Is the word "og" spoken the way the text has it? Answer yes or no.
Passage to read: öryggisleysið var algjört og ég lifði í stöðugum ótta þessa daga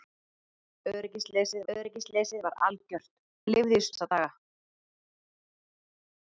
no